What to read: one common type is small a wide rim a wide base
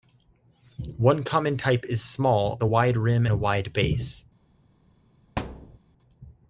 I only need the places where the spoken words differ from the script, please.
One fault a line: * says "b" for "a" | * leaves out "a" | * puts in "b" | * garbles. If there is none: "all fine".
all fine